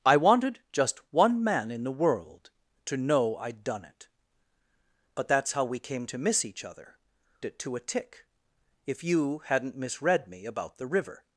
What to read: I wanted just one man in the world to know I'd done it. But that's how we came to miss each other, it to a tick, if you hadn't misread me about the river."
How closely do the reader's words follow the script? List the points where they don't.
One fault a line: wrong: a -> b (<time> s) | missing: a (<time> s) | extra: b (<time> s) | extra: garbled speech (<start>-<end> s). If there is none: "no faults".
no faults